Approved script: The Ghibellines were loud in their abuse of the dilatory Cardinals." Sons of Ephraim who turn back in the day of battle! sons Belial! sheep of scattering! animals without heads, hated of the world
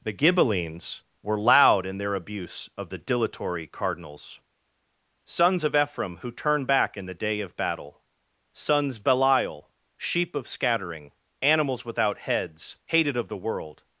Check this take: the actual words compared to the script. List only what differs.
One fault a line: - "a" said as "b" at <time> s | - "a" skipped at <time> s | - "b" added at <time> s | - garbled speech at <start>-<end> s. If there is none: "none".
none